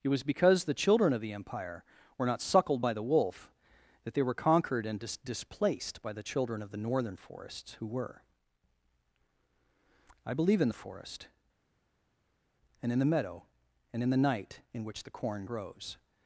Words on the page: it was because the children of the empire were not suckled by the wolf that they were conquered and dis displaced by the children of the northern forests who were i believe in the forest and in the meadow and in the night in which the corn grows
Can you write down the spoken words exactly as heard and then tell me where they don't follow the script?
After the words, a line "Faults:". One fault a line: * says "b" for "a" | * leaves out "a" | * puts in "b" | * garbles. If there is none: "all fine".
it was because the children of the empire were not suckled by the wolf that they were conquered and dis displaced by the children of the northern forests who were i believe in the forest and in the meadow and in the night in which the corn grows
Faults:
all fine